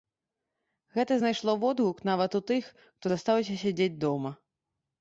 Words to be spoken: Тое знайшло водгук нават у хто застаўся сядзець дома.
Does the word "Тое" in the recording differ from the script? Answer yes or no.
yes